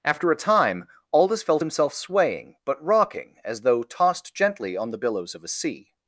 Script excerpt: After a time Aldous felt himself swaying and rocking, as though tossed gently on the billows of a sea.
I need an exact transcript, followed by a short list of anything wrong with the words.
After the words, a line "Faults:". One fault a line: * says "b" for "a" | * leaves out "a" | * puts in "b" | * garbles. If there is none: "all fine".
After a time Aldous felt himself swaying but rocking, as though tossed gently on the billows of a sea.
Faults:
* says "but" for "and"